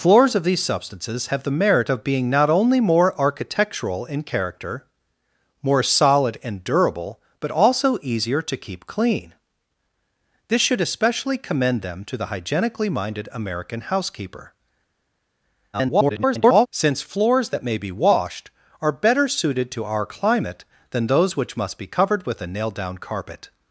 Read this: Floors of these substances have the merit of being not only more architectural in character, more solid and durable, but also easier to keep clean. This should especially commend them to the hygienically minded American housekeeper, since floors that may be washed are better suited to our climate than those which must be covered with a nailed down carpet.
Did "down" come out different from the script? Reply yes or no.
no